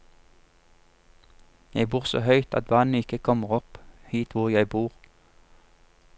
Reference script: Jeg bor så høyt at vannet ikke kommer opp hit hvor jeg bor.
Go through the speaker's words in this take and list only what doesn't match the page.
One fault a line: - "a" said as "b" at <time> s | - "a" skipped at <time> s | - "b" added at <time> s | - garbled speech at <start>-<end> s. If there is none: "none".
none